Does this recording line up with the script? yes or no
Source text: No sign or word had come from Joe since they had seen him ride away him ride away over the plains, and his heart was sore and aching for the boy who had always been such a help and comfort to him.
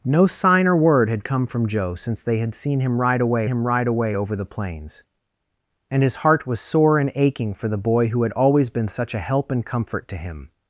yes